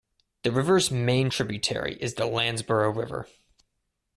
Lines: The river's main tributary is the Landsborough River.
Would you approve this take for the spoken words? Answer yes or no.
yes